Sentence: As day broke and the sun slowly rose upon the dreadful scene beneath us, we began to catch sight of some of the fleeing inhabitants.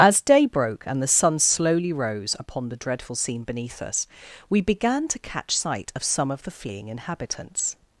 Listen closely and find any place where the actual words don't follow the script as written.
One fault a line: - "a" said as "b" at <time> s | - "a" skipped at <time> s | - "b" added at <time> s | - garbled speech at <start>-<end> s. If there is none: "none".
none